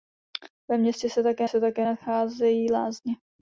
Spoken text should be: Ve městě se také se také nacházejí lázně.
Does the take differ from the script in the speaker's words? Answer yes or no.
no